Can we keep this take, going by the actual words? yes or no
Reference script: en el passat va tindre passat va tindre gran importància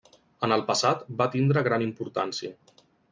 no